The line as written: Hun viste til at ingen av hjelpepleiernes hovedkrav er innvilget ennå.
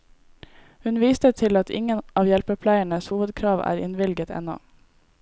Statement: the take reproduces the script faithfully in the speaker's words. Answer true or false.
true